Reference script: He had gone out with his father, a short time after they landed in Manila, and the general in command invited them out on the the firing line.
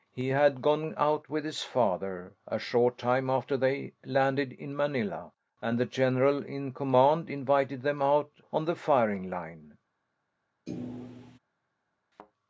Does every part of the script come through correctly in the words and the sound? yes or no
no